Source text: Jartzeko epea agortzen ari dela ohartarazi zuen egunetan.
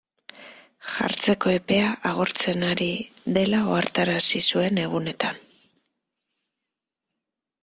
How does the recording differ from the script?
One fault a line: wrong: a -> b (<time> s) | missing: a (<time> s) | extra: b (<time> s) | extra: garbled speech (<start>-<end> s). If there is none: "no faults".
no faults